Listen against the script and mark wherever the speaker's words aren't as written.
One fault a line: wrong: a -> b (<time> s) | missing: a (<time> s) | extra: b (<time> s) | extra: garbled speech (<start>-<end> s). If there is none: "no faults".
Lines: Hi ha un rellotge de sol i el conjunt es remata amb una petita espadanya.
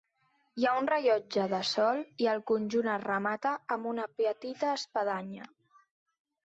no faults